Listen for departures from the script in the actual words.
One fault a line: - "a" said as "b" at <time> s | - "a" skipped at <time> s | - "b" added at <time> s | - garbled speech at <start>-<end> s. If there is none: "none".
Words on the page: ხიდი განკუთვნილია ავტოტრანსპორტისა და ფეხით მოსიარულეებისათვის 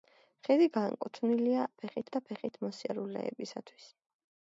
- "ავტოტრანსპორტისა" said as "ფეხით" at 1.8 s